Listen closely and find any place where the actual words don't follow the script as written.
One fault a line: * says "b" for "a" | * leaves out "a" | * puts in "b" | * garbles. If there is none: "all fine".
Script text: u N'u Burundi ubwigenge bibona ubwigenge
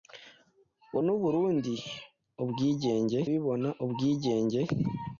all fine